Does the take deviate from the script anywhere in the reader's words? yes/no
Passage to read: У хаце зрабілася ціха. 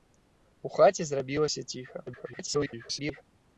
yes